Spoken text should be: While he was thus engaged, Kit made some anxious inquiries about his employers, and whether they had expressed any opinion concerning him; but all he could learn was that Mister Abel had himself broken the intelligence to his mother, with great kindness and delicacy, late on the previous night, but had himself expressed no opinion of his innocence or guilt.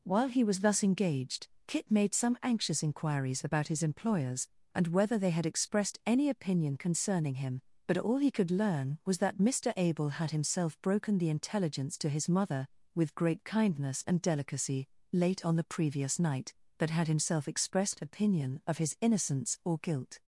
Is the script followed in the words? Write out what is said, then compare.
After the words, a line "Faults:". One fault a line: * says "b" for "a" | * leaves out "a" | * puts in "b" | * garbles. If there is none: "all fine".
While he was thus engaged, Kit made some anxious inquiries about his employers, and whether they had expressed any opinion concerning him; but all he could learn was that Mister Abel had himself broken the intelligence to his mother, with great kindness and delicacy, late on the previous night, but had himself expressed opinion of his innocence or guilt.
Faults:
* leaves out "no"